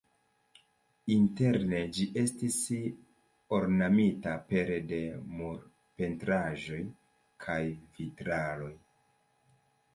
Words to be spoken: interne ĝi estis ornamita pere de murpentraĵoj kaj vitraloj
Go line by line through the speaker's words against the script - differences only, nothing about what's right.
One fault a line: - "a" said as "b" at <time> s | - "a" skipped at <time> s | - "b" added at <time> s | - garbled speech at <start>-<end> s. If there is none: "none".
none